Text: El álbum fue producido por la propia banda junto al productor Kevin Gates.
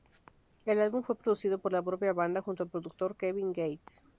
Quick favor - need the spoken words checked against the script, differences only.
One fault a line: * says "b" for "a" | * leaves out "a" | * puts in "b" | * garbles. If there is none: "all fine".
all fine